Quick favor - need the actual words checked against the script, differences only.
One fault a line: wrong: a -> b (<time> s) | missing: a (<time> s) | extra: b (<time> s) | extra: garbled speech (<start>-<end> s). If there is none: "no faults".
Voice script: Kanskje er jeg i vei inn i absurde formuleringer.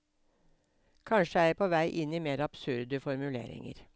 wrong: i -> på (1.6 s)
extra: mer (2.2 s)